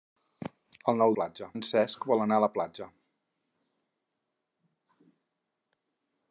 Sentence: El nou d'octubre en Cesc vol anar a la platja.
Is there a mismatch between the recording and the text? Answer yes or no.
yes